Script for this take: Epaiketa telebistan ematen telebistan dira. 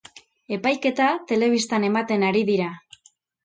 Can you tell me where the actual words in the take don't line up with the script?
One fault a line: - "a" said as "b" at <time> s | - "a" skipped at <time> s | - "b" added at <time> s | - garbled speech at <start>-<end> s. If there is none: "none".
- "telebistan" said as "ari" at 2.3 s